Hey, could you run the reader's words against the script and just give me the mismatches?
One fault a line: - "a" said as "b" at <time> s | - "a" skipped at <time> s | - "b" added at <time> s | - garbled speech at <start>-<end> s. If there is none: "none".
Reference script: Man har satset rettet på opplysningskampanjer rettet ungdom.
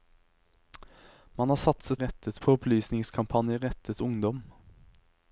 none